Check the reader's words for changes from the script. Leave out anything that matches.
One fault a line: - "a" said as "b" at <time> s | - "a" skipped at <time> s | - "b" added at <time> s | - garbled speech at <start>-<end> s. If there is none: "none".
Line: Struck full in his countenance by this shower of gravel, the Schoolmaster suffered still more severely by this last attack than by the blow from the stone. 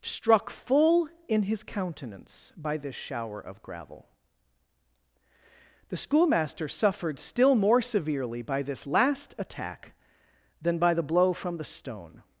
none